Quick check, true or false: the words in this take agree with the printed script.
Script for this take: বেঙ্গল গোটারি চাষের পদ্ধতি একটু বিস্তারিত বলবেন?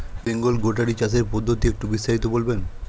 true